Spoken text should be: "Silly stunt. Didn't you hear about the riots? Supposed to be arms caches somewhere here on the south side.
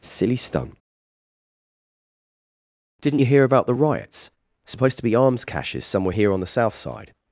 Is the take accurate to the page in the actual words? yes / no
yes